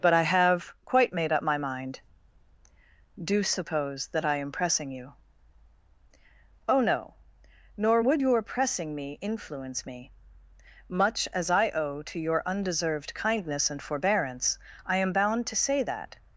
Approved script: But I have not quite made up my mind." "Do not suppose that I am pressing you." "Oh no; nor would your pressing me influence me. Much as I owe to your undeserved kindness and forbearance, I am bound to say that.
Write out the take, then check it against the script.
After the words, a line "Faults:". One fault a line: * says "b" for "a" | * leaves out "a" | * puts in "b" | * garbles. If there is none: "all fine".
But I have quite made up my mind." "Do suppose that I am pressing you." "Oh no; nor would your pressing me influence me. Much as I owe to your undeserved kindness and forbearance, I am bound to say that.
Faults:
* leaves out "not"
* leaves out "not"